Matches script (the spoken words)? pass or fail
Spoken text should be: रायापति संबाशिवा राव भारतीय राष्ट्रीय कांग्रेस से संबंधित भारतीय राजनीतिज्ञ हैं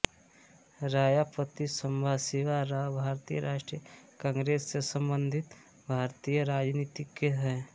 pass